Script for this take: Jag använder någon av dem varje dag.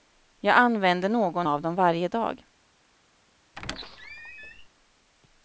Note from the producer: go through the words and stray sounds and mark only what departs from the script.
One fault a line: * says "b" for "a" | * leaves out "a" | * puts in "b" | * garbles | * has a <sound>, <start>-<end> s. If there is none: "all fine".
* has a squeak, 3.6-4.7 s